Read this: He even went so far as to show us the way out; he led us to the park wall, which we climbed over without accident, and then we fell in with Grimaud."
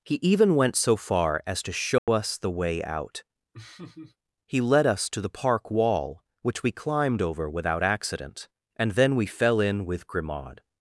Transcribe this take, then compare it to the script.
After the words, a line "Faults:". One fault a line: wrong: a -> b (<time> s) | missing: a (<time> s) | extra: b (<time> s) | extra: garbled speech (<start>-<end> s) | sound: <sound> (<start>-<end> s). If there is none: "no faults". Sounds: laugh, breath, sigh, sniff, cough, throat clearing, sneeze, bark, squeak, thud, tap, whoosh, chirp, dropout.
He even went so far as to show us the way out; he led us to the park wall, which we climbed over without accident, and then we fell in with Grimaud."
Faults:
sound: dropout (2.0-2.1 s)
sound: laugh (3.5-4.2 s)